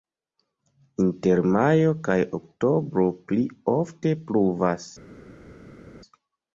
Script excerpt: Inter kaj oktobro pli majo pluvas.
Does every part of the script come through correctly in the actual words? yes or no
no